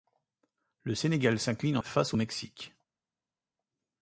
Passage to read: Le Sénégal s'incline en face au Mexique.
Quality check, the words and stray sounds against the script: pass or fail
pass